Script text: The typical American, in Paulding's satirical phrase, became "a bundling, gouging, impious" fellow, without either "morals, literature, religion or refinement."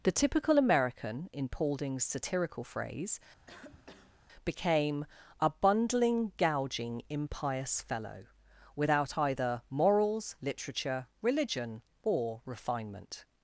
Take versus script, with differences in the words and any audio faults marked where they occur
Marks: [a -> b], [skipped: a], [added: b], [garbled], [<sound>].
The typical American, in Paulding's satirical phrase, [cough] became "a bundling, gouging, impious" fellow, without either "morals, literature, religion or refinement."